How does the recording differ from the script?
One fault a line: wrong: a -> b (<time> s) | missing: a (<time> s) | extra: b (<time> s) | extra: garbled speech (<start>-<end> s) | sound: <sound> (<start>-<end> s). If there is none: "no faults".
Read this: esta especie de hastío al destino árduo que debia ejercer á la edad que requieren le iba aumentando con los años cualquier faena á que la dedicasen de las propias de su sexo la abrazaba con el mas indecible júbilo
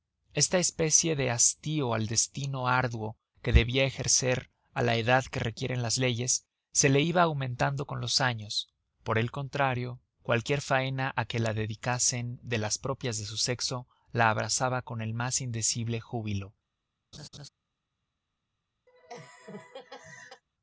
extra: las leyes se (5.8 s)
extra: por el contrario (9.0 s)
sound: laugh (17.1-17.5 s)
sound: laugh (18.9-20.4 s)